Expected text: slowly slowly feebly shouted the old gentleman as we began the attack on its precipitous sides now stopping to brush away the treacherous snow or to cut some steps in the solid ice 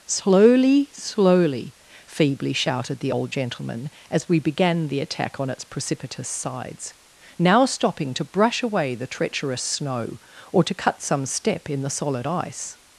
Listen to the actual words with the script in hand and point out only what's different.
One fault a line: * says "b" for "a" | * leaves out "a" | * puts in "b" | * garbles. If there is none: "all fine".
* says "step" for "steps"